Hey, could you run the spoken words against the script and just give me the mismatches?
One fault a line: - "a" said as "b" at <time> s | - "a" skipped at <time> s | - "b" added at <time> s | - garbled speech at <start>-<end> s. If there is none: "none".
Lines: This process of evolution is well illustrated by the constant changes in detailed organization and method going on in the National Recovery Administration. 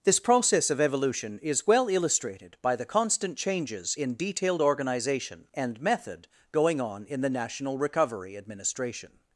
none